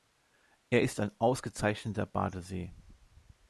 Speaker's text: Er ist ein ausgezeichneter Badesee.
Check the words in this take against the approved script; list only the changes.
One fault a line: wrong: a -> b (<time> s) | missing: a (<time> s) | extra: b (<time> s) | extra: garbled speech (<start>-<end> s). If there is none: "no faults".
no faults